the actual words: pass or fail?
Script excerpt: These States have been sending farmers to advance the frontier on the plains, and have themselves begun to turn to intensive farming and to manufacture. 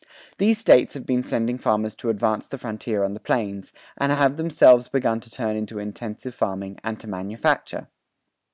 pass